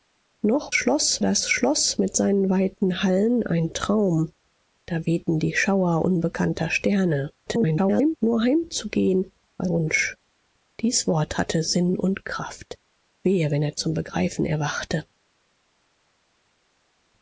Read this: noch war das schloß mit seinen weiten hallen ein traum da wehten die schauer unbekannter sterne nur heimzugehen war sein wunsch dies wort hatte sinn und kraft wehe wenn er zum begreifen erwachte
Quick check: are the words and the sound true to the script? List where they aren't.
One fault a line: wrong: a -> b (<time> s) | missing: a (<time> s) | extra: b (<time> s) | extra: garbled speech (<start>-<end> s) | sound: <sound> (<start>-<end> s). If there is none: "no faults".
wrong: war -> schloß (0.7 s)
extra: garbled speech (7.5-8.2 s)
missing: sein (9.7 s)